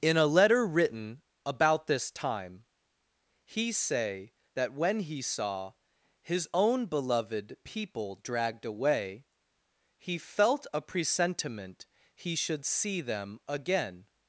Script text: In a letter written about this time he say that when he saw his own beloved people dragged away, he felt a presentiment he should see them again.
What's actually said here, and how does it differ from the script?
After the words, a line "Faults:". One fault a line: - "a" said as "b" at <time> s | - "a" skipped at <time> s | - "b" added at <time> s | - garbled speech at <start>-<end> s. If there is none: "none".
In a letter written about this time he say that when he saw his own beloved people dragged away, he felt a presentiment he should see them again.
Faults:
none